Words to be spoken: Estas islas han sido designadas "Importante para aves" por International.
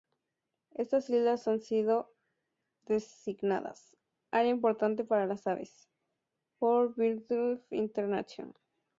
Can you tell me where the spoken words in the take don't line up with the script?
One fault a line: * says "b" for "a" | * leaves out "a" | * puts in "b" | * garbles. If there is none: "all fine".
* puts in "Área"
* puts in "las"
* puts in "Birdlife"